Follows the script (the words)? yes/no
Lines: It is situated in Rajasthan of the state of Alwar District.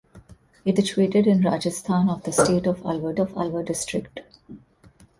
no